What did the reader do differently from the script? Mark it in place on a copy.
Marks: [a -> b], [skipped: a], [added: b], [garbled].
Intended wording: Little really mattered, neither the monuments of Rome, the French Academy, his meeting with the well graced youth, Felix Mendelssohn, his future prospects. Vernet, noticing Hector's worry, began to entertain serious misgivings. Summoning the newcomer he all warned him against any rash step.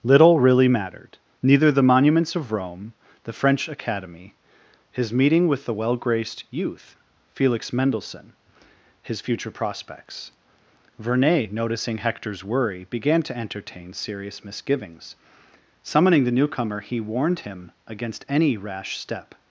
Little really mattered, neither the monuments of Rome, the French Academy, his meeting with the well graced youth, Felix Mendelssohn, his future prospects. Vernet, noticing Hector's worry, began to entertain serious misgivings. Summoning the newcomer he [skipped: all] warned him against any rash step.